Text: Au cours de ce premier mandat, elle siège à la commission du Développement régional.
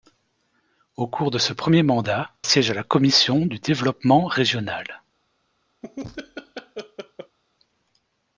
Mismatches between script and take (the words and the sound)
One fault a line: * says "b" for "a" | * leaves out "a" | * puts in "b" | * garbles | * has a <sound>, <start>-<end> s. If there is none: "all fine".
* leaves out "elle"
* has a laugh, 5.8-7.4 s